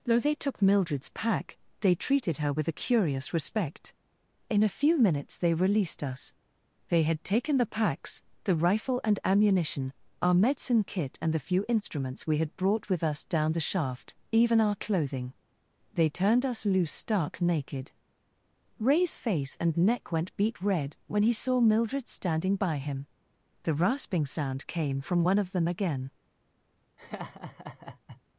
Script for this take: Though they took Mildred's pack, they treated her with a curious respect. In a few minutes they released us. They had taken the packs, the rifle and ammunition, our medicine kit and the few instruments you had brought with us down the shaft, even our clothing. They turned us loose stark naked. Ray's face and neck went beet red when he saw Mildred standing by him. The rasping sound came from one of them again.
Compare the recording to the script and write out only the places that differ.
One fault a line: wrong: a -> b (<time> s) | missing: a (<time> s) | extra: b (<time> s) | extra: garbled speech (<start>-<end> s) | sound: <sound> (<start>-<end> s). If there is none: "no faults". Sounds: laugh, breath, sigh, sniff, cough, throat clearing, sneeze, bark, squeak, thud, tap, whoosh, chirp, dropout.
wrong: you -> we (12.2 s)
sound: laugh (27.0-28.2 s)